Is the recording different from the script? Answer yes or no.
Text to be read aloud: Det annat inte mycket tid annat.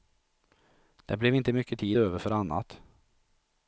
yes